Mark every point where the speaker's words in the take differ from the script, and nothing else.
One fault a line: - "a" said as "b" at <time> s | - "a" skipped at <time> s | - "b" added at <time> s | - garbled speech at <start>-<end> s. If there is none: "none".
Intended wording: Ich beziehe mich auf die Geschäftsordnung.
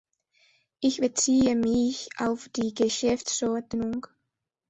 none